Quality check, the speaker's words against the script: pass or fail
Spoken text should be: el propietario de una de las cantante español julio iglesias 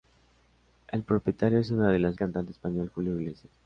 pass